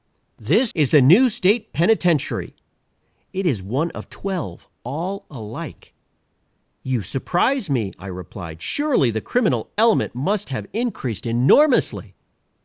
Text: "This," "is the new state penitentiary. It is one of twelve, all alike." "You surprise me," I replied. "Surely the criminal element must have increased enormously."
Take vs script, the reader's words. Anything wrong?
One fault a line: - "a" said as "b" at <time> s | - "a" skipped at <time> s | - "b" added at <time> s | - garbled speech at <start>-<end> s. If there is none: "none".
none